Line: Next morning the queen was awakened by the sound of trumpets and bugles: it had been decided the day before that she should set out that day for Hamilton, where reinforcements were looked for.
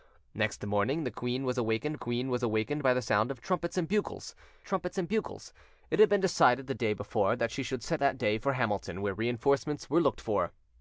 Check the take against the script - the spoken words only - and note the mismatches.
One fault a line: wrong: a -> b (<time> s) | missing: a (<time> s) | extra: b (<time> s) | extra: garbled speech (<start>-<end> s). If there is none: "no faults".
extra: queen was awakened (2.0 s)
extra: trumpets and bugles (4.6 s)
missing: out (8.0 s)